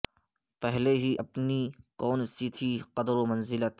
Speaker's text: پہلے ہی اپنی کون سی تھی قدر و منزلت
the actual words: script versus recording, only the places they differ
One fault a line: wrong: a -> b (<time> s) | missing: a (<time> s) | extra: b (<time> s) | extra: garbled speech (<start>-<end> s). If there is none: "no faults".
no faults